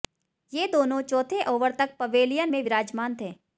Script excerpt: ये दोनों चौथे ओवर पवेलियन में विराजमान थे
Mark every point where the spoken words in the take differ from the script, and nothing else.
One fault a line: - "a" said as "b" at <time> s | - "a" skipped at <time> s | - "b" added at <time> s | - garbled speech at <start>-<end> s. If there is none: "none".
- "तक" added at 1.8 s